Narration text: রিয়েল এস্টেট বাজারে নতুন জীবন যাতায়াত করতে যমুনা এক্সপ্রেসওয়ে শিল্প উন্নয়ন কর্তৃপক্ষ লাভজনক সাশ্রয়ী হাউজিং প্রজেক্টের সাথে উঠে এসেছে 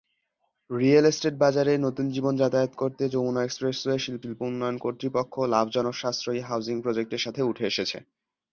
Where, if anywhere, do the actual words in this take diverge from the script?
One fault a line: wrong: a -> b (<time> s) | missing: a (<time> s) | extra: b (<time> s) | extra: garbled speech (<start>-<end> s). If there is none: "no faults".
extra: শিল্প (4.2 s)